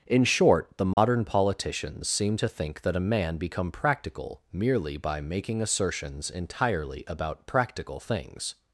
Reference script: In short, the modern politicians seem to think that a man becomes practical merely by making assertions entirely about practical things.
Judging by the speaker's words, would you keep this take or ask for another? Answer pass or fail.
fail